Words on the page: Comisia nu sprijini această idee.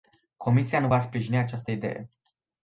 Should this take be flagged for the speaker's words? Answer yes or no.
yes